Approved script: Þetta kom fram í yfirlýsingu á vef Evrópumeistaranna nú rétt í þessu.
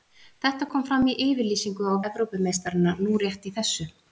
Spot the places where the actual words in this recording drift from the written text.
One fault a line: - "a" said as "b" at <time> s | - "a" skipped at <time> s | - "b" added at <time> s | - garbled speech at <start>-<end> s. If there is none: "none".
- "vef" skipped at 1.9 s